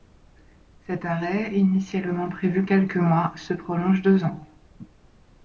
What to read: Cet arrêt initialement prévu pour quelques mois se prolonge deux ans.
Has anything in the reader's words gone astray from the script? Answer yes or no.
yes